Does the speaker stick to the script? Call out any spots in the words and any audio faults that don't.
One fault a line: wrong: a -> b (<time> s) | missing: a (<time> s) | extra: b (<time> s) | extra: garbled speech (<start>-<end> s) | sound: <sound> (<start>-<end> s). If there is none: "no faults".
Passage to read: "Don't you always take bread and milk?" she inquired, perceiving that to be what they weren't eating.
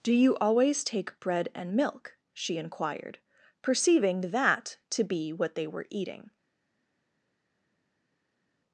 wrong: Don't -> Do (0.0 s)
wrong: weren't -> were (5.7 s)